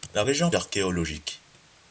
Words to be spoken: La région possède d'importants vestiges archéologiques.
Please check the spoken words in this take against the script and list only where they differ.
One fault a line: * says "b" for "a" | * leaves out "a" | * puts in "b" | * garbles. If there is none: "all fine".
* leaves out "possède d'importants vestiges"